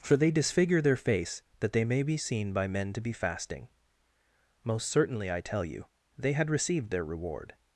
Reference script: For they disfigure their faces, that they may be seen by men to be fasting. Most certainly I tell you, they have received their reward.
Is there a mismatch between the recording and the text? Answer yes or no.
yes